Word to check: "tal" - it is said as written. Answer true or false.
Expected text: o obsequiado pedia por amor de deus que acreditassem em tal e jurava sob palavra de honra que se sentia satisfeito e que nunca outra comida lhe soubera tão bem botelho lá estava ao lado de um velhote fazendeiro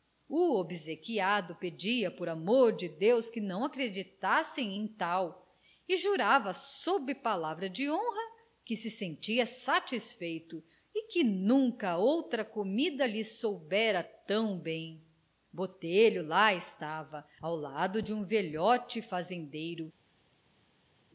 true